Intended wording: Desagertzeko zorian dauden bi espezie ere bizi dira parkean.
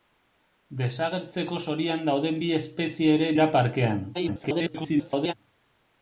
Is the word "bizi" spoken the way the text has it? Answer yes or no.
no